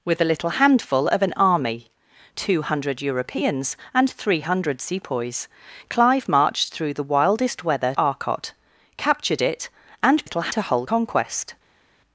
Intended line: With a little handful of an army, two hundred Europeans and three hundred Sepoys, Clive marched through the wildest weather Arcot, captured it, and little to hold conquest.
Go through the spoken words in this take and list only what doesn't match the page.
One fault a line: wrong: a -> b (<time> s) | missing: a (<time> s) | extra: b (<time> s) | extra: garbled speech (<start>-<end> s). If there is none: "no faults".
no faults